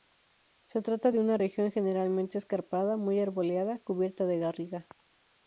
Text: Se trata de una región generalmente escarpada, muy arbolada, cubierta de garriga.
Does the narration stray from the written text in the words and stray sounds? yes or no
no